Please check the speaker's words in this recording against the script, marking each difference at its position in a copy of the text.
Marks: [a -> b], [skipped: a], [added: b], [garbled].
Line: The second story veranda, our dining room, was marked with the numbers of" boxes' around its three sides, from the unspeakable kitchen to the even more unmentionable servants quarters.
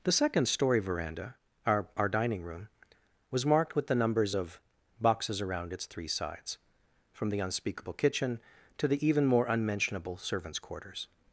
The second story veranda, our [added: our] dining room, was marked with the numbers of" boxes' around its three sides, from the unspeakable kitchen to the even more unmentionable servants quarters.